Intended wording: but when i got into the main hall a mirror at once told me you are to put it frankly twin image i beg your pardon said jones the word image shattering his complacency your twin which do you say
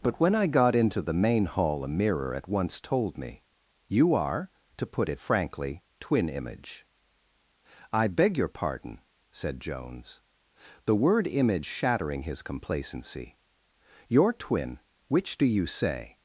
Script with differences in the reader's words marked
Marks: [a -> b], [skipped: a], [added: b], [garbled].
but when i got into the main hall a mirror at once told me you are to put it frankly twin image i beg your pardon said jones the word image shattering his complacency your twin which do you say